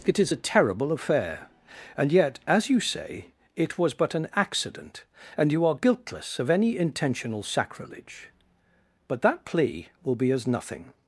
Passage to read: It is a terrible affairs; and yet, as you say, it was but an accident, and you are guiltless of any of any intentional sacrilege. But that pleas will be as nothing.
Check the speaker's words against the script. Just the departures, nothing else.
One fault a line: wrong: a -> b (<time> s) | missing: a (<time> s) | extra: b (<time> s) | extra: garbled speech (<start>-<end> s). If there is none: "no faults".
wrong: affairs -> affair (0.9 s)
missing: of any (6.8 s)
wrong: pleas -> plea (9.4 s)